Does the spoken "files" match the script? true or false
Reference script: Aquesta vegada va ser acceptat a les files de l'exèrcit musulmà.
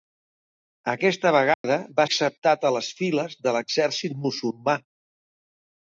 true